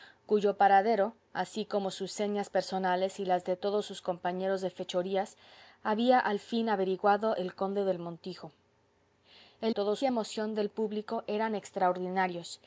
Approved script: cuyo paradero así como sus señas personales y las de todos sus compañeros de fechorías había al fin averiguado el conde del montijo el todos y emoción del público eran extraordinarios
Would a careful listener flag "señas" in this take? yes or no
no